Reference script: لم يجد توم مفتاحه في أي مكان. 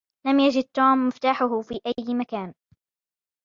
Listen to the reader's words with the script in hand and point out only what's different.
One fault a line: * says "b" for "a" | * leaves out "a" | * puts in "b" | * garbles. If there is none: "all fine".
all fine